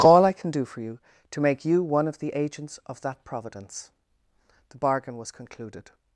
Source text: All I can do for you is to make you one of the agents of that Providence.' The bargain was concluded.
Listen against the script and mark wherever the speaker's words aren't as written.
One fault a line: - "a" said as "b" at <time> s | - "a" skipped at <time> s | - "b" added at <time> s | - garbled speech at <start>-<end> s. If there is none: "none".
- "is" skipped at 1.0 s